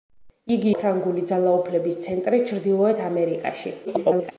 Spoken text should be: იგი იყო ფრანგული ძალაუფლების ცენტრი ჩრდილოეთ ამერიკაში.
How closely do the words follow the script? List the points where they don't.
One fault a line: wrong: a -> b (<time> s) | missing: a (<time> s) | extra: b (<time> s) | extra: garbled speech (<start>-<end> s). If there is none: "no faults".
missing: იყო (0.7 s)
extra: garbled speech (3.9-4.3 s)